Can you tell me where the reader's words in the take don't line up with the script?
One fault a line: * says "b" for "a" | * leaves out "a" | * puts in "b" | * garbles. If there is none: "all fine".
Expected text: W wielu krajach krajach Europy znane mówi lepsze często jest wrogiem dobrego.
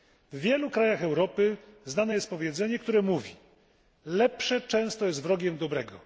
* leaves out "krajach"
* puts in "jest powiedzenie które"